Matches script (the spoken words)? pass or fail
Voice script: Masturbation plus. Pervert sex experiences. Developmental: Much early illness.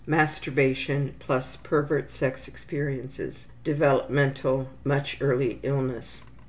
pass